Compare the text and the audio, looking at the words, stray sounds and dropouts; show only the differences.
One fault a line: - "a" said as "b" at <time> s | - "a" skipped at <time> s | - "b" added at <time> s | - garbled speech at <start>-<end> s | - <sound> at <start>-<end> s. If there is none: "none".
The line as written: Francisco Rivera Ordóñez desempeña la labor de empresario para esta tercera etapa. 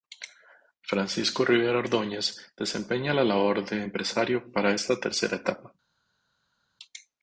none